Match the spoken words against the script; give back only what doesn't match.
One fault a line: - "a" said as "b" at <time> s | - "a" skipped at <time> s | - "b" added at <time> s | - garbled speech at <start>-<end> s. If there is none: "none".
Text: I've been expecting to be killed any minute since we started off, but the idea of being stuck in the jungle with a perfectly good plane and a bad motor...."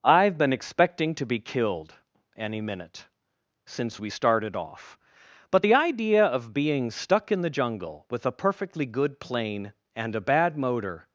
none